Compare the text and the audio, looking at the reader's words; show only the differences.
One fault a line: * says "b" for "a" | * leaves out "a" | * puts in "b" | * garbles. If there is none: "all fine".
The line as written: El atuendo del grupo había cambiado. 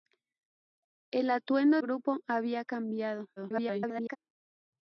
* leaves out "del"
* garbles